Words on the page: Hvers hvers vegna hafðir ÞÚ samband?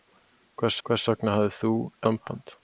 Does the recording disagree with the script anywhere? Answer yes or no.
no